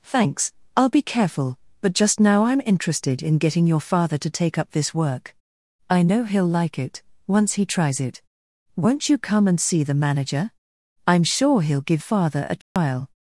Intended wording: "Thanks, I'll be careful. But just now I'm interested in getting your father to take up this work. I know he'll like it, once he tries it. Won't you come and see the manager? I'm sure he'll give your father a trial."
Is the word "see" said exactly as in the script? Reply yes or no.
yes